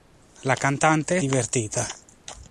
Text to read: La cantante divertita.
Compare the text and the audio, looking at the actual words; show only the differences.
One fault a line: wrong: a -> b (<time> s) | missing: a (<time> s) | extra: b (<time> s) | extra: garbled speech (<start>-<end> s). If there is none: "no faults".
no faults